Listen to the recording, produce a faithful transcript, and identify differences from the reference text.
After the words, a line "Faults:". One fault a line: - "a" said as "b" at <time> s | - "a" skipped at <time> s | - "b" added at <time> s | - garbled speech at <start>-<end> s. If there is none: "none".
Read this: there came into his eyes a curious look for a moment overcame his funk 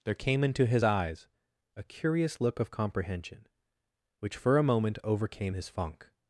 there came into his eyes a curious look of comprehension which for a moment overcame his funk
Faults:
- "of comprehension which" added at 2.6 s